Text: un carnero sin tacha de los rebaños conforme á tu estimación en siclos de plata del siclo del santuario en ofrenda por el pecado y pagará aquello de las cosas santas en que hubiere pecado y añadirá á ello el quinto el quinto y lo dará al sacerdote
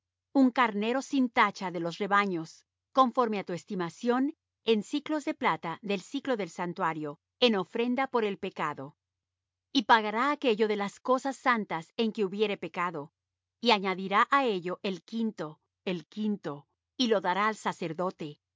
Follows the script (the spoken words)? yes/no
yes